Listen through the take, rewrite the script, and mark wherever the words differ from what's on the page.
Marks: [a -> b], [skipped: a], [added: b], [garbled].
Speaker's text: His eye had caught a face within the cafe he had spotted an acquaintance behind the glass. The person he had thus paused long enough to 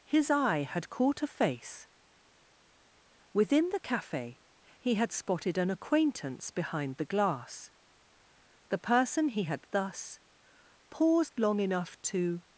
His eye had caught a face within the cafe he had spotted an acquaintance behind the glass. The person he had thus paused long enough to